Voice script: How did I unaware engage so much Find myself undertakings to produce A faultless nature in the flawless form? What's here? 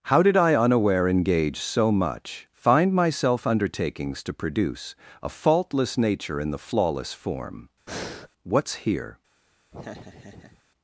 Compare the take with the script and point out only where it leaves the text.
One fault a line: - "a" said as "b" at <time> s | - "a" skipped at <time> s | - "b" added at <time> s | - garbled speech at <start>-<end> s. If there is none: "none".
none